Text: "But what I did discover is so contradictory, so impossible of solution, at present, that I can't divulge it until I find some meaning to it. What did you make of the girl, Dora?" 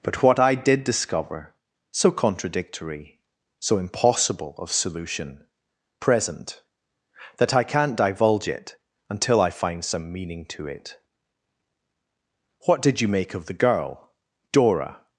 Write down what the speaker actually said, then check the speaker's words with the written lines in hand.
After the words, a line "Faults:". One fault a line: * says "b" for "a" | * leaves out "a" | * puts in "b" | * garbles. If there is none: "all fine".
"But what I did discover so contradictory, so impossible of solution, present, that I can't divulge it until I find some meaning to it. What did you make of the girl, Dora?"
Faults:
* leaves out "is"
* leaves out "at"